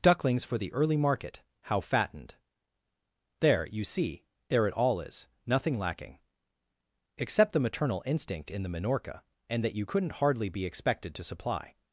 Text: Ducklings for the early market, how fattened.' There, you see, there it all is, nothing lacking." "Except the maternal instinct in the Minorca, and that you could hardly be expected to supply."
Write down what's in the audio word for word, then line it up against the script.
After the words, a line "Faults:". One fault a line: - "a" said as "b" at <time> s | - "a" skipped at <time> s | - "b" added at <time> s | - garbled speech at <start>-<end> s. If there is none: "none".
Ducklings for the early market, how fattened.' There, you see, there it all is, nothing lacking." "Except the maternal instinct in the Minorca, and that you couldn't hardly be expected to supply."
Faults:
- "could" said as "couldn't" at 9.8 s